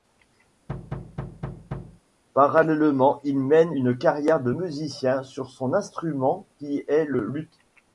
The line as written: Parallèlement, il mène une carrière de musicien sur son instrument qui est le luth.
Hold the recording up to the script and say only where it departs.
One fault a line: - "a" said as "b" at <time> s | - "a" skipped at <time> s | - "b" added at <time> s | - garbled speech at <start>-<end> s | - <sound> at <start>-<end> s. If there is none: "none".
- thud at 0.7-2.0 s